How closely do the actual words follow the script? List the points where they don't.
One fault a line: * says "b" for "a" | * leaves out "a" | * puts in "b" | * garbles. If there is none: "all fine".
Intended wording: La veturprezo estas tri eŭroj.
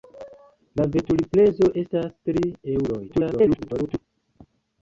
* garbles